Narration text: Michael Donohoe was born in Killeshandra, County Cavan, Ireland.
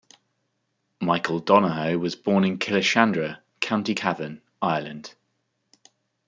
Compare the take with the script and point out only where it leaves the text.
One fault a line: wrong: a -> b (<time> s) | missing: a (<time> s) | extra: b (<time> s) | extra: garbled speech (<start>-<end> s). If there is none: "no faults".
no faults